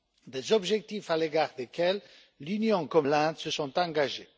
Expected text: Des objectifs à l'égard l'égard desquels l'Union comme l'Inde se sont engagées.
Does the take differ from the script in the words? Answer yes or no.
yes